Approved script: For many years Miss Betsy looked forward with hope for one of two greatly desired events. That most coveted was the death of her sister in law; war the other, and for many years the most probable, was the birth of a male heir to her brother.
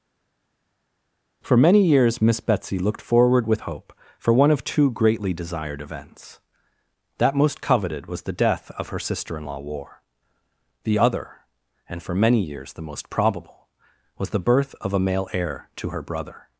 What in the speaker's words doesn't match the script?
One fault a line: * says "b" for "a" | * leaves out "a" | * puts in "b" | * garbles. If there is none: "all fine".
all fine